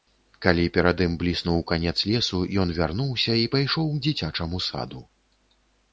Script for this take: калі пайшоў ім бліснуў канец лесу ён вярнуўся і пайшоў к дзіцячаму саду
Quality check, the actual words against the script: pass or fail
fail